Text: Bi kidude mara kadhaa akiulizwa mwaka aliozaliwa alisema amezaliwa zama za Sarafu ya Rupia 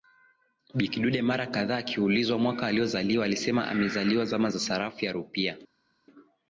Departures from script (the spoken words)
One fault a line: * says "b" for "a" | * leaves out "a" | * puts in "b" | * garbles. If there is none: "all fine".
all fine